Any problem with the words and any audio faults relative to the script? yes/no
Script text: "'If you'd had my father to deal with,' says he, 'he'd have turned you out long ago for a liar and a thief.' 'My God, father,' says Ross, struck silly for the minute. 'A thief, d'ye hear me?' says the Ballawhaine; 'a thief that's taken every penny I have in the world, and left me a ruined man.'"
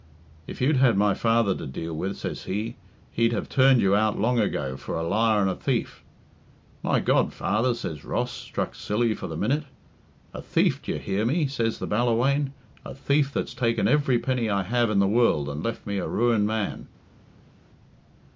no